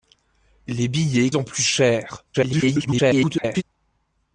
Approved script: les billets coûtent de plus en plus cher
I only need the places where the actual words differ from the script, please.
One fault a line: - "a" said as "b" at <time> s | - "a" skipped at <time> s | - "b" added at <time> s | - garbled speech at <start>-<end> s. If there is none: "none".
- "coûtent de plus" skipped at 1.3 s
- garbled speech at 2.3-3.6 s